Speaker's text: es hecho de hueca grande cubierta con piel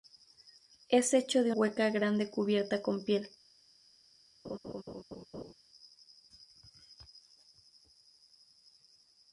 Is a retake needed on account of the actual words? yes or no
no